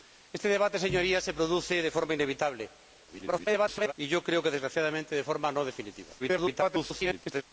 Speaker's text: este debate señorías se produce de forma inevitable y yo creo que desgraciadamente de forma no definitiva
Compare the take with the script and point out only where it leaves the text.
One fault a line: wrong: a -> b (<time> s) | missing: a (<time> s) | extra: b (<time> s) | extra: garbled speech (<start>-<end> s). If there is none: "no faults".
extra: garbled speech (3.1-3.9 s)
extra: garbled speech (6.2-7.4 s)